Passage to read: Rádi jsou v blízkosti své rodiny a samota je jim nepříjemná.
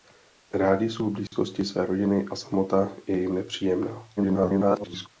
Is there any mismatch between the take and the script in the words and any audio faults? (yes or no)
yes